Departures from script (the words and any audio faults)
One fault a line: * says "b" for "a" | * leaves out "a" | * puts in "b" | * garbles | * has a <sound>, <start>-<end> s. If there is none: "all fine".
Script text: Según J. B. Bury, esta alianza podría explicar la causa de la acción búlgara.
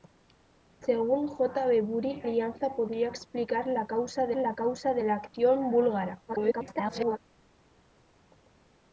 * leaves out "esta"
* puts in "causa de la"
* garbles